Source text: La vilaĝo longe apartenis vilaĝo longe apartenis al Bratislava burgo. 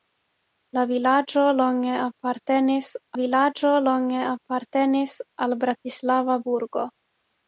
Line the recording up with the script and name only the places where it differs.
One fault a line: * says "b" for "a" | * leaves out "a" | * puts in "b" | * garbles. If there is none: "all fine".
all fine